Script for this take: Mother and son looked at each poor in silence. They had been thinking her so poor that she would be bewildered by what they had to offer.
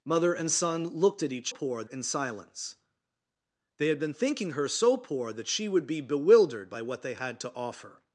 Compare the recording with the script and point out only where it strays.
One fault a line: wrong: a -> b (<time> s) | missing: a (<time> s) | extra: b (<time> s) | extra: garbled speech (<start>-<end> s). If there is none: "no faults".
no faults